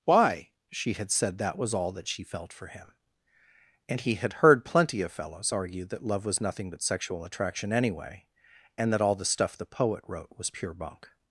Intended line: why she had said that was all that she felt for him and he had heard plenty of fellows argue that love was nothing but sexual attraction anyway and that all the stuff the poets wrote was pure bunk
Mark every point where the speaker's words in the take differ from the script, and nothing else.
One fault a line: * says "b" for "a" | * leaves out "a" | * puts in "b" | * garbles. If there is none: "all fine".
* says "poet" for "poets"